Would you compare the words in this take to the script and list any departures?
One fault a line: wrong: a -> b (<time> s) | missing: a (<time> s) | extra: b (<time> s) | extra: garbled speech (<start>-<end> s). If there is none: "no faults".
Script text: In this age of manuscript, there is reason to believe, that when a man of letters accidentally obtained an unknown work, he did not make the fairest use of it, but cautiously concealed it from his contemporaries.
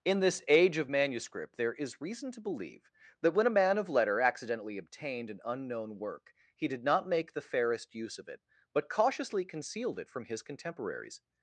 wrong: letters -> letter (3.9 s)